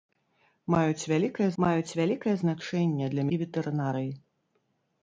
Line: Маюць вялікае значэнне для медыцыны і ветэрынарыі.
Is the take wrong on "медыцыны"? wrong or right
wrong